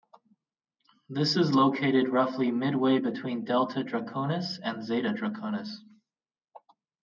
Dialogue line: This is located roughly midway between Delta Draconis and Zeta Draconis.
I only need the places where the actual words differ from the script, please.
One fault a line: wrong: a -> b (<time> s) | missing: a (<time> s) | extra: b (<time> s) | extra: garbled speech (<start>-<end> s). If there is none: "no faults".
no faults